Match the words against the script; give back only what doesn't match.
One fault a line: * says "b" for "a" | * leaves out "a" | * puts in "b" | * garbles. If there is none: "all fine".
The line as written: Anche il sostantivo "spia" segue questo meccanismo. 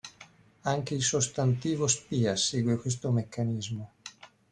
all fine